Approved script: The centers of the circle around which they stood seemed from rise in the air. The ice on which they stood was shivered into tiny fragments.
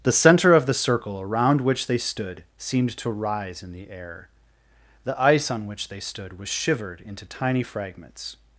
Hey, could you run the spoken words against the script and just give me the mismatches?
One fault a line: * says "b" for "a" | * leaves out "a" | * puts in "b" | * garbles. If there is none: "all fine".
* says "center" for "centers"
* says "to" for "from"